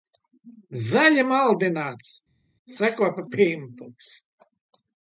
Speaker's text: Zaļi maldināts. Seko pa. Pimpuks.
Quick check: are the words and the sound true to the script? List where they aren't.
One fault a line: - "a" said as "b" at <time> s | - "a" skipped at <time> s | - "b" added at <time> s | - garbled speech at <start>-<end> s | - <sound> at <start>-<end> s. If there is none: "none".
none